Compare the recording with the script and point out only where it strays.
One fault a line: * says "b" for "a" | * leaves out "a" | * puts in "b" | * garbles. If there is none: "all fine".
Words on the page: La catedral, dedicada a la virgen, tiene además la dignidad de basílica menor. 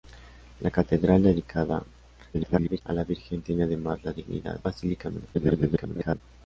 * garbles
* leaves out "de"
* garbles